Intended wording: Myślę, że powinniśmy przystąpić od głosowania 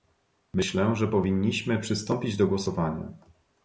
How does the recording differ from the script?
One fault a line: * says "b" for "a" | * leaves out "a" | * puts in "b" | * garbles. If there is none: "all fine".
* says "do" for "od"